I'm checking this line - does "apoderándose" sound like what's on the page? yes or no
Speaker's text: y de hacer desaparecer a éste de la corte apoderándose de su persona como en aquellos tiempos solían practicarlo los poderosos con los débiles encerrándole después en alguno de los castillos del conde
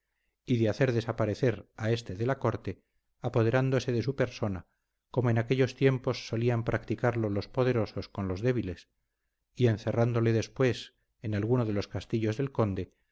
yes